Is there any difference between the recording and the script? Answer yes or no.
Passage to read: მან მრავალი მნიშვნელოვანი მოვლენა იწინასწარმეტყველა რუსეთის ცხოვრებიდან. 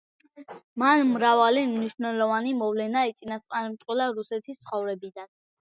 no